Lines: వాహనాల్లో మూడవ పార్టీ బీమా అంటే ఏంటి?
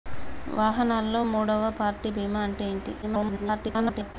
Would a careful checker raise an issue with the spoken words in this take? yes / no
yes